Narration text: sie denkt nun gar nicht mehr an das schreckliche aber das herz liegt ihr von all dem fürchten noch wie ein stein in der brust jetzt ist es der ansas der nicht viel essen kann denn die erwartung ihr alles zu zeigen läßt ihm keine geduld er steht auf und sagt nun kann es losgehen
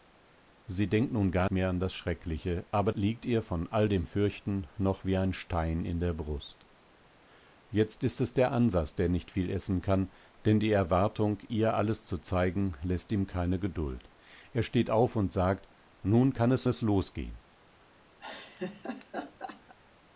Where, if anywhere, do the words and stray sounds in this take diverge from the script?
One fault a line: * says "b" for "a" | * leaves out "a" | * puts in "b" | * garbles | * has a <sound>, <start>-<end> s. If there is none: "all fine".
* leaves out "nicht"
* leaves out "das herz"
* puts in "es"
* has a laugh, 18.2-19.7 s